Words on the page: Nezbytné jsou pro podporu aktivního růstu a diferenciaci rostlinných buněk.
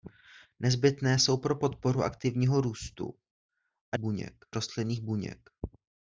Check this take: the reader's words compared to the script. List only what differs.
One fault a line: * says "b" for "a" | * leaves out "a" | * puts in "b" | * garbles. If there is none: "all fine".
* says "buněk" for "diferenciaci"